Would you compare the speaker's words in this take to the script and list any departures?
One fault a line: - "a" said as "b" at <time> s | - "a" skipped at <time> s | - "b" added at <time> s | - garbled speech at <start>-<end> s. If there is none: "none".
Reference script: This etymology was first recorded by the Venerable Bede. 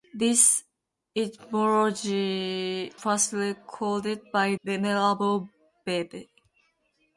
- "was" skipped at 2.9 s
- "the" skipped at 4.5 s